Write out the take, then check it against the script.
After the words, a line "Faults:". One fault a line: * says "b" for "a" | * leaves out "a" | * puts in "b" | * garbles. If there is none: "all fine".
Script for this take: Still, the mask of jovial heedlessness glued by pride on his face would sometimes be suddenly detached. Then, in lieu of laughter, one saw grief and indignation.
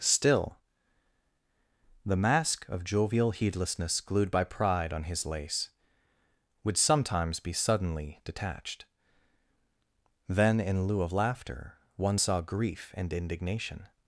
Still, the mask of jovial heedlessness glued by pride on his lace would sometimes be suddenly detached. Then, in lieu of laughter, one saw grief and indignation.
Faults:
* says "lace" for "face"